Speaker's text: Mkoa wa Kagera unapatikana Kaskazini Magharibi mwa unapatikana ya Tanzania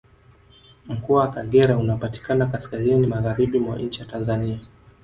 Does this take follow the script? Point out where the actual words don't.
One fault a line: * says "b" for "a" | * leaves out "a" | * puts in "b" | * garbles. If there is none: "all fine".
* says "nchi" for "unapatikana"